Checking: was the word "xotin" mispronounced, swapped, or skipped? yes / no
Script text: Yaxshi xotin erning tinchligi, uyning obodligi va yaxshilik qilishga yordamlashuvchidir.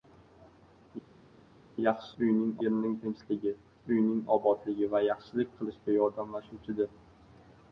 yes